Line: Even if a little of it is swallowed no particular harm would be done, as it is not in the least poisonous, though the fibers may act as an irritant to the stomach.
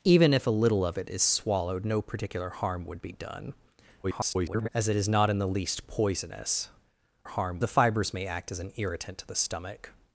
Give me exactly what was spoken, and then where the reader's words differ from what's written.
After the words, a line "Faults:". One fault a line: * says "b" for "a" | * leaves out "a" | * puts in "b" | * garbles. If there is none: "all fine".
Even if a little of it is swallowed no particular harm would be done, [garbled] as it is not in the least poisonous, harm the fibers may act as an irritant to the stomach.
Faults:
* garbles
* says "harm" for "though"